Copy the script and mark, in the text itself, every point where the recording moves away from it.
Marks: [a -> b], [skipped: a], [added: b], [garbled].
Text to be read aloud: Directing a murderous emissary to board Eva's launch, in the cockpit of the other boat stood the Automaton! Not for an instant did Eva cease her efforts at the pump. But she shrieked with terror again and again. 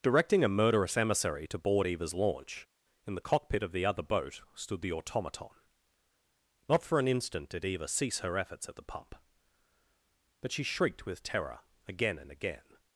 Directing a murderous emissary to board Eva's launch, in the cockpit of the other boat stood the Automaton! Not for an instant did Eva cease her efforts at the pump. But she shrieked with terror again and again.